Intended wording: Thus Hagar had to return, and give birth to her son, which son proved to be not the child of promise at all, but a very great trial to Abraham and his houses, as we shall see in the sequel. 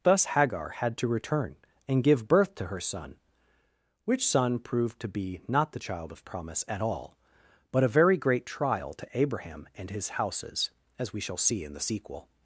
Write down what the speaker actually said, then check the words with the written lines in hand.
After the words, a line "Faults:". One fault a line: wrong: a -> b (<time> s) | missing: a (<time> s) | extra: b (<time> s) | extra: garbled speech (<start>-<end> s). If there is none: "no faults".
Thus Hagar had to return, and give birth to her son, which son proved to be not the child of promise at all, but a very great trial to Abraham and his houses, as we shall see in the sequel.
Faults:
no faults